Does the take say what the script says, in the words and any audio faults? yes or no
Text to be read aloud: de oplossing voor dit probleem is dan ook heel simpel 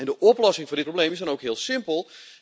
yes